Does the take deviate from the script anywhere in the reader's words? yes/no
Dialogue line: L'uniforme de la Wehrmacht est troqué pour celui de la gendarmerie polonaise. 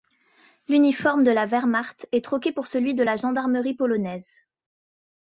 no